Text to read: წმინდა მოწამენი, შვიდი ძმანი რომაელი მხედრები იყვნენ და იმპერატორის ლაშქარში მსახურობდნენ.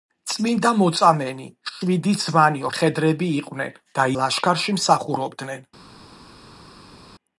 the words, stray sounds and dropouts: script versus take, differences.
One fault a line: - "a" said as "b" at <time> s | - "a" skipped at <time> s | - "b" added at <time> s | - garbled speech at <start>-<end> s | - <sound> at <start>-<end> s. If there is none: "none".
- "რომაელი" skipped at 2.6 s
- "იმპერატორის" skipped at 4.1 s